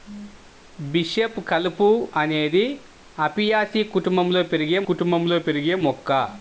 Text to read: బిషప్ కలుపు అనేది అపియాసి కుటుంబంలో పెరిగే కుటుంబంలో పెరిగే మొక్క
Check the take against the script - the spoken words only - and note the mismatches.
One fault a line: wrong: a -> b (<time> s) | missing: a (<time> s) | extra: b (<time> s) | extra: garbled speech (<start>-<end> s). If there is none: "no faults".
no faults